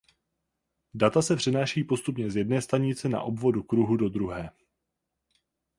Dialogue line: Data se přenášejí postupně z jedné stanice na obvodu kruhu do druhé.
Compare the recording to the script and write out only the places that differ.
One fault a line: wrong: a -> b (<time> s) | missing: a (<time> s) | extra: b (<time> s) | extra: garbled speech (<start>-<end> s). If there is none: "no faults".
no faults